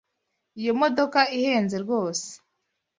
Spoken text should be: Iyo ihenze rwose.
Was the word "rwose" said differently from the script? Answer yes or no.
no